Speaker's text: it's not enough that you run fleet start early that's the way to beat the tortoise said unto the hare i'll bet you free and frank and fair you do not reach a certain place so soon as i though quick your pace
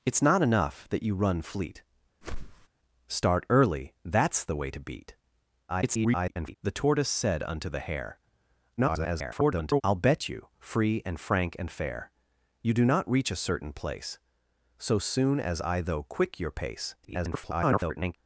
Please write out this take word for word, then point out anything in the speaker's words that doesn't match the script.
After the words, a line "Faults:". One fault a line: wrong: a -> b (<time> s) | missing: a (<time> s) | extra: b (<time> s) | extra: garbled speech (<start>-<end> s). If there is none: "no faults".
it's not enough that you run fleet start early that's the way to beat [garbled] the tortoise said unto the hare [garbled] i'll bet you free and frank and fair you do not reach a certain place so soon as i though quick your pace [garbled]
Faults:
extra: garbled speech (5.7-6.6 s)
extra: garbled speech (8.8-9.8 s)
extra: garbled speech (17.0-18.2 s)